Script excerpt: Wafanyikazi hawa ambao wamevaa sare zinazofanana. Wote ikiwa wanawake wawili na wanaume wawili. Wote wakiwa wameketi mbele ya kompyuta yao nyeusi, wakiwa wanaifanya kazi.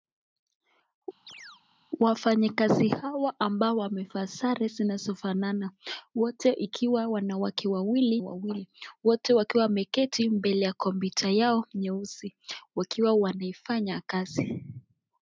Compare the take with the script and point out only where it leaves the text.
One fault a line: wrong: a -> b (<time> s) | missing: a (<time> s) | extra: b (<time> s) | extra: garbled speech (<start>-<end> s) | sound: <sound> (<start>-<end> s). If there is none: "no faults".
sound: chirp (1.3-1.6 s)
missing: na wanaume (8.2 s)